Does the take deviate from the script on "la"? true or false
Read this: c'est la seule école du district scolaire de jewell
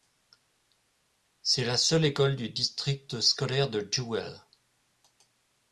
false